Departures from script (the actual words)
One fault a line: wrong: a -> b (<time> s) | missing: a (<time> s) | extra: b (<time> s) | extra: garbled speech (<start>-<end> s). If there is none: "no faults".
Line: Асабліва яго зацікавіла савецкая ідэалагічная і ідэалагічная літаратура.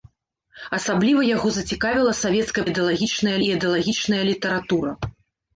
no faults